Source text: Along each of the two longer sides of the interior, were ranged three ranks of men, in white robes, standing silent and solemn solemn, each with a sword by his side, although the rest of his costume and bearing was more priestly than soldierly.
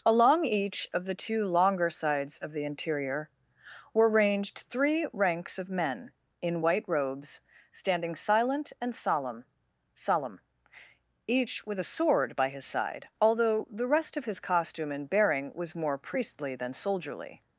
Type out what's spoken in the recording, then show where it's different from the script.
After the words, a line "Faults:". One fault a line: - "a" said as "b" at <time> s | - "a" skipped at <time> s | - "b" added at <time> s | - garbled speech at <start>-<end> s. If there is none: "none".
Along each of the two longer sides of the interior, were ranged three ranks of men, in white robes, standing silent and solemn solemn, each with a sword by his side, although the rest of his costume and bearing was more priestly than soldierly.
Faults:
none